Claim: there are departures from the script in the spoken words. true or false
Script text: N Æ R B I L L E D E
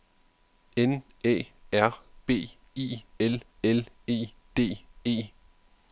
false